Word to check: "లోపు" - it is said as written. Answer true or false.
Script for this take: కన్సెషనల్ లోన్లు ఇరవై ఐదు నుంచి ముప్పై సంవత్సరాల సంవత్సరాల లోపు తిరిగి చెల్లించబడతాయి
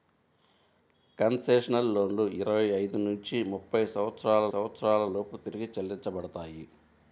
true